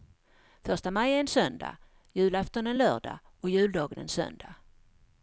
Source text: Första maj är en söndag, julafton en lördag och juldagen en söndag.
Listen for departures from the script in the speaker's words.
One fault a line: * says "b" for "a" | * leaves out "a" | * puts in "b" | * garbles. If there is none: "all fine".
all fine